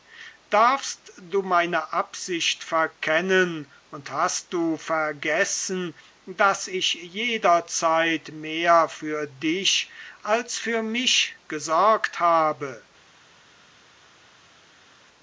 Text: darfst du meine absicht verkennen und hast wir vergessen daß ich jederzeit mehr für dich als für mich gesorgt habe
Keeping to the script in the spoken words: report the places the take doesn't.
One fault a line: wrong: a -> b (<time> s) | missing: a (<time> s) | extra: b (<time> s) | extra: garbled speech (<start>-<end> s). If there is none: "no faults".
wrong: wir -> du (4.5 s)